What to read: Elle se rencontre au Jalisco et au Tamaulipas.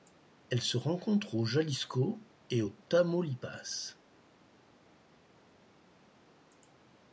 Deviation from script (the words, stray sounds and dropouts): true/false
false